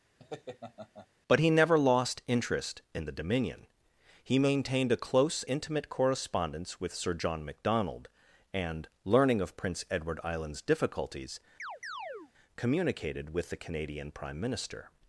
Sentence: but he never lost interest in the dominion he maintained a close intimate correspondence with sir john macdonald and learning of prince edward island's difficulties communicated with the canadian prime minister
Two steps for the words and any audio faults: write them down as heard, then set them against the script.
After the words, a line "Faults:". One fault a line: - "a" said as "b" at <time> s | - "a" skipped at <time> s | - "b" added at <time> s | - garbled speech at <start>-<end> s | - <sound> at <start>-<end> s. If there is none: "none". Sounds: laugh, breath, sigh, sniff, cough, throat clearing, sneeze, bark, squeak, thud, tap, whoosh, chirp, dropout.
but he never lost interest in the dominion he maintained a close intimate correspondence with sir john macdonald and learning of prince edward island's difficulties communicated with the canadian prime minister
Faults:
- laugh at 0.2-1.1 s
- chirp at 11.6-12.3 s